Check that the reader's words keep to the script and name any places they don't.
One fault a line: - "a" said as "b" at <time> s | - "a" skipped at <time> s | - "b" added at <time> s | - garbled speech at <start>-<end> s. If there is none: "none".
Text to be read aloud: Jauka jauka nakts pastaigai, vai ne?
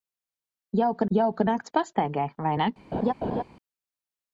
none